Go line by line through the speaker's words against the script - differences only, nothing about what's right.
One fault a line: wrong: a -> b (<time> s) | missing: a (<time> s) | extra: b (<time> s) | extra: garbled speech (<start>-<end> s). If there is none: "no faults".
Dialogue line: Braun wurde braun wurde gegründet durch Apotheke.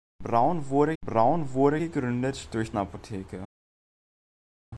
no faults